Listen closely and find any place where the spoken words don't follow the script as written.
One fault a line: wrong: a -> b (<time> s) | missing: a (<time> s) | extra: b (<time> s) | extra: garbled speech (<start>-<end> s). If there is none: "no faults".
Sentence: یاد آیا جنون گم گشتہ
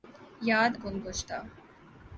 missing: آیا جنون (0.7 s)